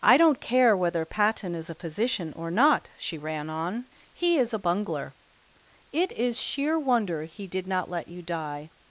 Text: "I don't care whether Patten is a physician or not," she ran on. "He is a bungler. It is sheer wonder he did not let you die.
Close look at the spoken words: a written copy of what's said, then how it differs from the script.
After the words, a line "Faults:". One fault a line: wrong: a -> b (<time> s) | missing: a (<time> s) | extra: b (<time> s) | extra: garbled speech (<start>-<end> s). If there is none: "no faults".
"I don't care whether Patten is a physician or not," she ran on. "He is a bungler. It is sheer wonder he did not let you die.
Faults:
no faults